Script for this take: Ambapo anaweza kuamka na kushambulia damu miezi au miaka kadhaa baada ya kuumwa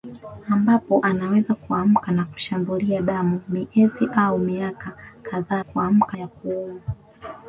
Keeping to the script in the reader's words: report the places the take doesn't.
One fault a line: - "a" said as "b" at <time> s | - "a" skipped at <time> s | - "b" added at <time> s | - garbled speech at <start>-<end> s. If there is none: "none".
- "baada" said as "kuamka" at 5.6 s